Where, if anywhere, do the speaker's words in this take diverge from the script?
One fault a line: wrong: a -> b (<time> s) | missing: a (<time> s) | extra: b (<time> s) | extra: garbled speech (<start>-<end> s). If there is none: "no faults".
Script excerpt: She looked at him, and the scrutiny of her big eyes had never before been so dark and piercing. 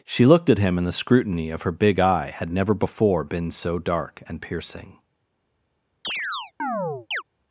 wrong: eyes -> eye (2.0 s)